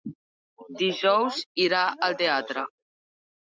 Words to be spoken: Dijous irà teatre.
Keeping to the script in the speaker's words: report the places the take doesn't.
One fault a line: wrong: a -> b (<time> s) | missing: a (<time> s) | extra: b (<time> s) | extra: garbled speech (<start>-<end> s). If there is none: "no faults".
extra: al (2.1 s)